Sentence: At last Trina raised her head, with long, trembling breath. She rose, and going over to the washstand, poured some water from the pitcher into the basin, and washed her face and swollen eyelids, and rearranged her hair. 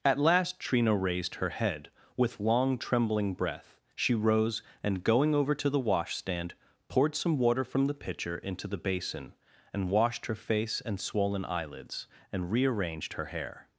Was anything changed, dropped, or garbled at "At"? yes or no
no